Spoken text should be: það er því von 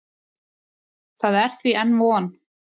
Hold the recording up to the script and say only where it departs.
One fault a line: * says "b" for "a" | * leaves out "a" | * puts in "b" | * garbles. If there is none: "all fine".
* puts in "enn"